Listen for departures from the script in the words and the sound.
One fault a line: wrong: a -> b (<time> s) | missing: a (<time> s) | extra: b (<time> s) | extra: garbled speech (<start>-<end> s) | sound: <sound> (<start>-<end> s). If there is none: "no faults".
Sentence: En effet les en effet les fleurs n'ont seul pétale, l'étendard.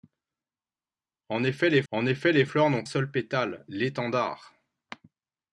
no faults